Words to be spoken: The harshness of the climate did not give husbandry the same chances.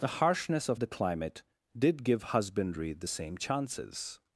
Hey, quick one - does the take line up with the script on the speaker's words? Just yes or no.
no